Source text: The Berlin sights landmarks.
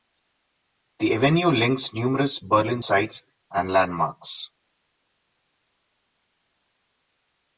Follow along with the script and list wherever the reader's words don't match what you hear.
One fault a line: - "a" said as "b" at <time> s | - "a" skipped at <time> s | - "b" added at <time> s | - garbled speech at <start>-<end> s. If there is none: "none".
- "avenue links numerous" added at 1.1 s
- "and" added at 3.5 s